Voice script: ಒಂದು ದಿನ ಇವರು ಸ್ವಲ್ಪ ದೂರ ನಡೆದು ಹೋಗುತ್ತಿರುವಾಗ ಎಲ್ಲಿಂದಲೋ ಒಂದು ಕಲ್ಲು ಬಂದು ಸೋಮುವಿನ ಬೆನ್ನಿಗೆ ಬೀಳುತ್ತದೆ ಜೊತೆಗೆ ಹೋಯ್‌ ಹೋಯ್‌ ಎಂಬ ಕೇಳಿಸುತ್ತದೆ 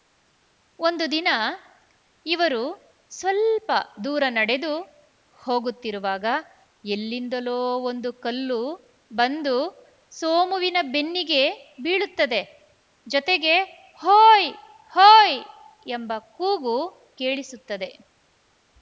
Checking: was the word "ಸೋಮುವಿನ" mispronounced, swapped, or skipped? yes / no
no